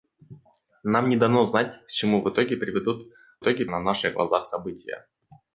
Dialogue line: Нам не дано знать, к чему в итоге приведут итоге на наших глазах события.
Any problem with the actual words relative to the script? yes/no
no